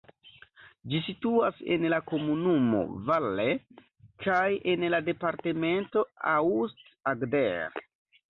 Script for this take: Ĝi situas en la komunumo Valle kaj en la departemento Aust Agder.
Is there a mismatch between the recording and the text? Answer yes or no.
no